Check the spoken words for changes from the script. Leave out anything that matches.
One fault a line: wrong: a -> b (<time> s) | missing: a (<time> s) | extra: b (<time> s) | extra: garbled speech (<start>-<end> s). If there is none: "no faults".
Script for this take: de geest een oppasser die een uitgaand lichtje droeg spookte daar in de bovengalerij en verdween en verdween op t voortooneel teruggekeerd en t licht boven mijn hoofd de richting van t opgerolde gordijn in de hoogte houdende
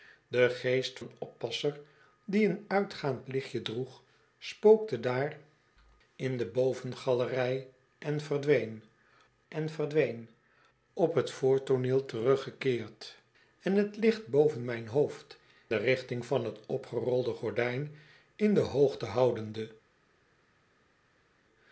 no faults